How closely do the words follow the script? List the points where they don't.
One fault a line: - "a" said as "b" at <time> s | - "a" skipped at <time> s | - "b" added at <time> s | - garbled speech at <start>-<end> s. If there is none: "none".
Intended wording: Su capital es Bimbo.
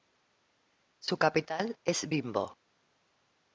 none